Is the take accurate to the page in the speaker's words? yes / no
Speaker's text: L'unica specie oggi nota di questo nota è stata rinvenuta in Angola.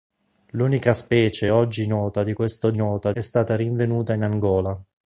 yes